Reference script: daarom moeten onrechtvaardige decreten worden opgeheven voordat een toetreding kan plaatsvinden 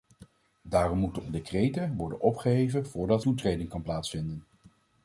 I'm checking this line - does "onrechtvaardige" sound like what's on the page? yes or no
no